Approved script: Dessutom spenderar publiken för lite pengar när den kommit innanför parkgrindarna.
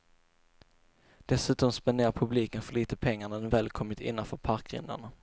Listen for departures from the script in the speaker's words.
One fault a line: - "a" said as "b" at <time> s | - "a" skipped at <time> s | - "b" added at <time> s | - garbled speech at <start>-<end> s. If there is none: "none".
- "väl" added at 3.5 s